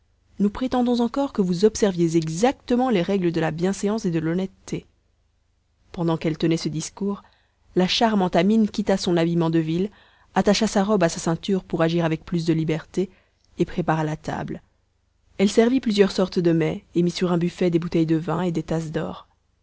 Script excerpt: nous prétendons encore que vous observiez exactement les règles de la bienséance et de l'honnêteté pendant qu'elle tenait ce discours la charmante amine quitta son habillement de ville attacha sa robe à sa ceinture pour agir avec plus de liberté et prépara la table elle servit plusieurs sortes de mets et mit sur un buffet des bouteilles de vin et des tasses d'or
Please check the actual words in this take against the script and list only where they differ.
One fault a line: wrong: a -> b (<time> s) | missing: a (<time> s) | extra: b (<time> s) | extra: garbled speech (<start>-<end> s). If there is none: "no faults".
no faults